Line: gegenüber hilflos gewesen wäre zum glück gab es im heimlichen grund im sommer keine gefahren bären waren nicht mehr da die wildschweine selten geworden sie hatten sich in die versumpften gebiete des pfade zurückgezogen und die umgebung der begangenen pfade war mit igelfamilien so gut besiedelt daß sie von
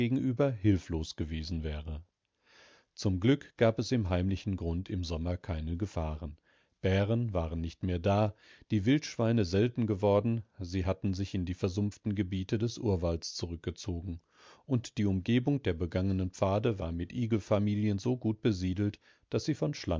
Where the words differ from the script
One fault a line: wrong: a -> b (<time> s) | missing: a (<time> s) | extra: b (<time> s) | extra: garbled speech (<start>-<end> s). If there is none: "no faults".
wrong: pfade -> urwalds (12.8 s)